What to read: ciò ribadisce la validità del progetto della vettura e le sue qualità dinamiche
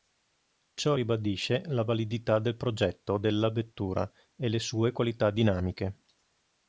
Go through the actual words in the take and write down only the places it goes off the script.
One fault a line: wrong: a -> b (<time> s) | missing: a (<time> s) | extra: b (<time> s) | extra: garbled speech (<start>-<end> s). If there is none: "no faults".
no faults